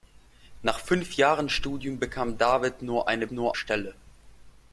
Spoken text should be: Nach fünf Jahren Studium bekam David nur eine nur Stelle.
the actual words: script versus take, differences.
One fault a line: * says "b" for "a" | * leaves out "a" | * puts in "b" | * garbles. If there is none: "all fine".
all fine